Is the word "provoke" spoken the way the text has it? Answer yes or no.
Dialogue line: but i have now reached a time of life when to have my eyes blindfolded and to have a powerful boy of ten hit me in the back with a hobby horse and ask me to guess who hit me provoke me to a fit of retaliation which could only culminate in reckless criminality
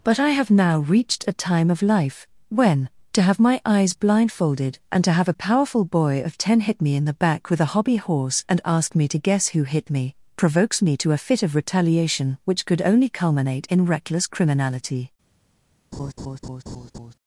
no